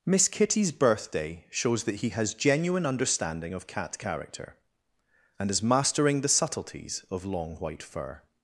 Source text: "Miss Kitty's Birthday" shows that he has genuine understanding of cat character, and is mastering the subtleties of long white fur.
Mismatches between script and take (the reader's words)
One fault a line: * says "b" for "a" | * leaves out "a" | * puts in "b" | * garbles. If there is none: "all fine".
all fine